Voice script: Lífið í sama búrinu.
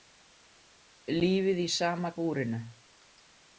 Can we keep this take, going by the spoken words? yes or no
yes